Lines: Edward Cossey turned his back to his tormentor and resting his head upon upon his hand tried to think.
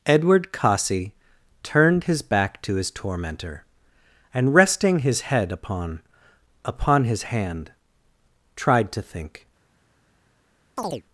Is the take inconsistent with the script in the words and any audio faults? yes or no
yes